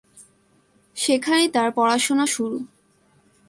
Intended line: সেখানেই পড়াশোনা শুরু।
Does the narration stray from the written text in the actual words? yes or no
yes